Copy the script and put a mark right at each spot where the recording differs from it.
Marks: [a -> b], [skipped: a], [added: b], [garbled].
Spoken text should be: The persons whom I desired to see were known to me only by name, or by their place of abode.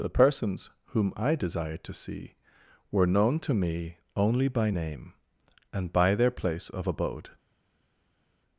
The persons whom I desired to see were known to me only by name, [or -> and] by their place of abode.